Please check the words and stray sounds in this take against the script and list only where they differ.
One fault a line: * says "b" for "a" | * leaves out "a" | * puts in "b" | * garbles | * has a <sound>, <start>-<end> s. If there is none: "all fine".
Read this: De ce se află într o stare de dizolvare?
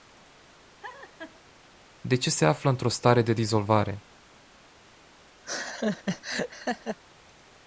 * has a laugh, 0.8-1.4 s
* has a laugh, 5.4-7.0 s